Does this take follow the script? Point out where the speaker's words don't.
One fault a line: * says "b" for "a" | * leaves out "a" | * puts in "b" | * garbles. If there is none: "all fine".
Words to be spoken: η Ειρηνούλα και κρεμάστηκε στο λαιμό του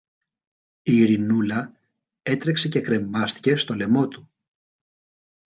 * puts in "έτρεξε"